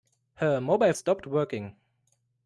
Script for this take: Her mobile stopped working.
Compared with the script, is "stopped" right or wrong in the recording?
right